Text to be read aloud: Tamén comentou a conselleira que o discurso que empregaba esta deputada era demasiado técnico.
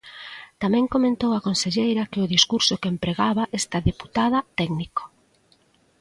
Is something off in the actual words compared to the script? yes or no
yes